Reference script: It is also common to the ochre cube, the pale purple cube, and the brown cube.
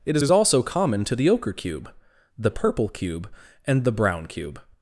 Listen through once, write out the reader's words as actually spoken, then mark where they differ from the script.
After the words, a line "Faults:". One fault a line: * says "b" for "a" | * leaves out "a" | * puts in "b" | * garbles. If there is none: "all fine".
It is is also common to the ochre cube, the purple cube, and the brown cube.
Faults:
* puts in "is"
* leaves out "pale"